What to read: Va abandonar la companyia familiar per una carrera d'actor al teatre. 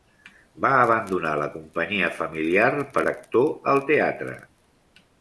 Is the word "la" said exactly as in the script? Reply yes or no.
yes